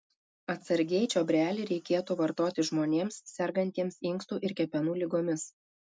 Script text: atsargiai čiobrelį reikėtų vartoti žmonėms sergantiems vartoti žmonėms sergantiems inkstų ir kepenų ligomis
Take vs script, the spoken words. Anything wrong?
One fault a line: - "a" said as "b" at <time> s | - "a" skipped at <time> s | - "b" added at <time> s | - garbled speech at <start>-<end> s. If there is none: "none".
- "vartoti žmonėms sergantiems" skipped at 4.0 s